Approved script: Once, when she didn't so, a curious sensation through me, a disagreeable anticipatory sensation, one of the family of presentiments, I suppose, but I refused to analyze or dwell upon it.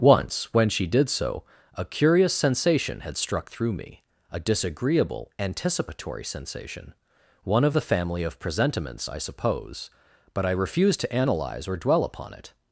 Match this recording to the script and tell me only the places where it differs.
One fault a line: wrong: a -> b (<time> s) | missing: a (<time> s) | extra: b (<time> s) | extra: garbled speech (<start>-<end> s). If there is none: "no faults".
wrong: didn't -> did (0.9 s)
extra: had struck (3.0 s)